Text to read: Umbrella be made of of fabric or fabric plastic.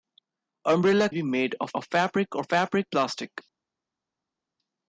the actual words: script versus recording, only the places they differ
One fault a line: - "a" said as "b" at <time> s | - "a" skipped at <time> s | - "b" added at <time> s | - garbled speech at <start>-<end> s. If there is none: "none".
none